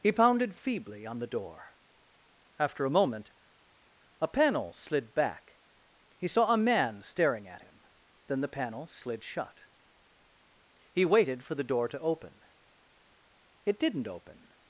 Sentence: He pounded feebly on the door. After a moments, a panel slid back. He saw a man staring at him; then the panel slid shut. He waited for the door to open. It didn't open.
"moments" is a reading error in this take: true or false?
true